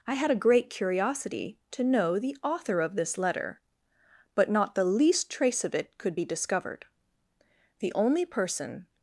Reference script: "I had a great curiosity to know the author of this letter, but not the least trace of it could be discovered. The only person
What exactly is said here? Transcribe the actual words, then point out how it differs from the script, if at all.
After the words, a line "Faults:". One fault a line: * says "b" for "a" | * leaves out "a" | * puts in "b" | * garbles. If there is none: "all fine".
"I had a great curiosity to know the author of this letter, but not the least trace of it could be discovered. The only person
Faults:
all fine